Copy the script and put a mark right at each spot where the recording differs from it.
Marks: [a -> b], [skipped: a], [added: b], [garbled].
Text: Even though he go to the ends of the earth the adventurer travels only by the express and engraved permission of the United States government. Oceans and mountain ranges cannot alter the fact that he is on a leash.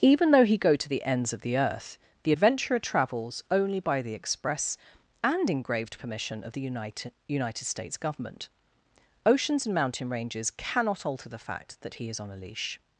Even though he go to the ends of the earth the adventurer travels only by the express and engraved permission of the United [added: United] States government. Oceans and mountain ranges cannot alter the fact that he is on a leash.